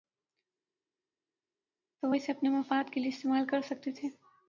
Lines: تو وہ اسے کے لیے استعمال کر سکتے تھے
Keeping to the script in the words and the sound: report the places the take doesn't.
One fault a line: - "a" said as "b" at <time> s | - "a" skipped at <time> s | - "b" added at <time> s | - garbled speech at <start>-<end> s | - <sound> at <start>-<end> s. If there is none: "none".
- "اپنے مفاد" added at 2.3 s